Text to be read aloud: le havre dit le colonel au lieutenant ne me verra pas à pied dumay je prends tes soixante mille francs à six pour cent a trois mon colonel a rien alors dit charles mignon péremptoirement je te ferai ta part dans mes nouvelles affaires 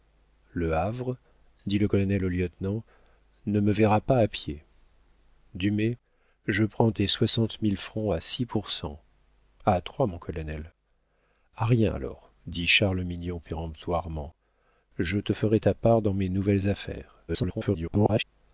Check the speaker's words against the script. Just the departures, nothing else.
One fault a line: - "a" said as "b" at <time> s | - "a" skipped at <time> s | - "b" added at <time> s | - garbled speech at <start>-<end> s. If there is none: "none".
- garbled speech at 17.3-18.2 s